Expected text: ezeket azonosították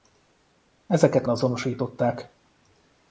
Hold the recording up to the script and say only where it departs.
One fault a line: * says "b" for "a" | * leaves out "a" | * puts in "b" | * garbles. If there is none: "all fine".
all fine